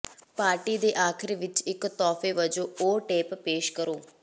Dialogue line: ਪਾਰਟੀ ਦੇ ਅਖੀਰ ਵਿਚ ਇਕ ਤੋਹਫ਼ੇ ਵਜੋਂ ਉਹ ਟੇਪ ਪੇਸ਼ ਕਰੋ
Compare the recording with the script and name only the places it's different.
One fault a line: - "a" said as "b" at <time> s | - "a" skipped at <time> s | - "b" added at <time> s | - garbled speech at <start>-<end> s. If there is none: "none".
none